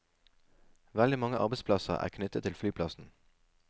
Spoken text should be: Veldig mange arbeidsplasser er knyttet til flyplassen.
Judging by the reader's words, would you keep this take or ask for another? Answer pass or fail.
pass